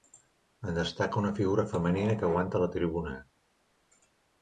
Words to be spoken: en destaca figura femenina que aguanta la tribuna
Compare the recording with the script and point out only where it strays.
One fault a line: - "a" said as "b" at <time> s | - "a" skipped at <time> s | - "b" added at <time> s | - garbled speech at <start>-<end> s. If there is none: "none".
- "una" added at 1.2 s